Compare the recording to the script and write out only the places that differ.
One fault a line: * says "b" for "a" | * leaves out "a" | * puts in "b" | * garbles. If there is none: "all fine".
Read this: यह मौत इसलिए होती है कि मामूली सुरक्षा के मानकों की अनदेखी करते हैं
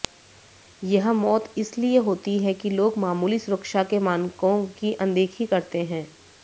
* puts in "लोग"